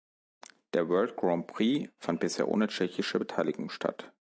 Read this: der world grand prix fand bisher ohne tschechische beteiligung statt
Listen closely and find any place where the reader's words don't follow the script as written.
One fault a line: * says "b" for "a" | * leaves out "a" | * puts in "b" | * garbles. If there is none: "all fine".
all fine